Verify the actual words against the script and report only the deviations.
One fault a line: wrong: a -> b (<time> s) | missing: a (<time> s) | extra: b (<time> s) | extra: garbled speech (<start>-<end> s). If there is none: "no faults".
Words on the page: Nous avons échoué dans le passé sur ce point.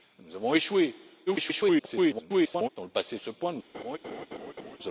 extra: garbled speech (1.3-2.7 s)
missing: sur (3.2 s)